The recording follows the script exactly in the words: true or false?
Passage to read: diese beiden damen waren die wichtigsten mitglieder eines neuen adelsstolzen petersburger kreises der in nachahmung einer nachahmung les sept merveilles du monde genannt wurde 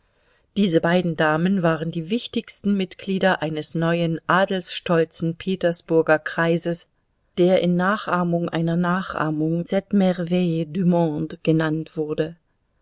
false